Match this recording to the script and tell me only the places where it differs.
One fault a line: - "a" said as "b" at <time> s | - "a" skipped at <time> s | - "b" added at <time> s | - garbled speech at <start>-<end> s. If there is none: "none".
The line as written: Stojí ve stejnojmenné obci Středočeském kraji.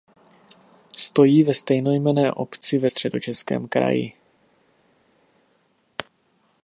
- "ve" added at 2.8 s